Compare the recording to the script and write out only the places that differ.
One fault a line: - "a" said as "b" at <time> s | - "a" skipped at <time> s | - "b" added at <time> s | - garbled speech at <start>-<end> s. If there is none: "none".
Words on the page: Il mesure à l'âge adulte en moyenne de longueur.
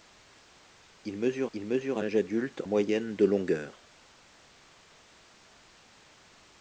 - "il mesure" added at 1.5 s
- "en" skipped at 2.6 s